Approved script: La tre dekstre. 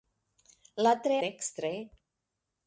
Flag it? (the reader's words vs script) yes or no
no